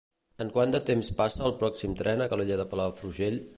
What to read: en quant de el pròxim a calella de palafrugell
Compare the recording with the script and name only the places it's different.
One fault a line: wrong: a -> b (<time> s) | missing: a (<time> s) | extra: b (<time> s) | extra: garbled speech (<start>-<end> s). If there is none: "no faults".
extra: temps passa (0.9 s)
extra: tren (2.0 s)